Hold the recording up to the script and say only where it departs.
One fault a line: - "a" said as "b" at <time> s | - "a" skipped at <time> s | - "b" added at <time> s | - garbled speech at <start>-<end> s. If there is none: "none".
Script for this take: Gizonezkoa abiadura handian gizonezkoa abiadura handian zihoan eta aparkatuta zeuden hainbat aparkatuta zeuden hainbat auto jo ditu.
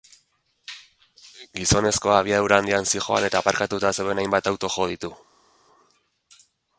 - "gizonezkoa abiadura handian" skipped at 2.9 s
- "aparkatuta zeuden hainbat" skipped at 4.5 s